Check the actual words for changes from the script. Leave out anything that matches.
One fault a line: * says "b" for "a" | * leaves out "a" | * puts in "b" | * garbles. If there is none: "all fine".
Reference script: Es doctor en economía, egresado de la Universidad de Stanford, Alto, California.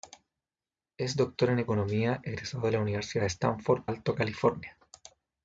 all fine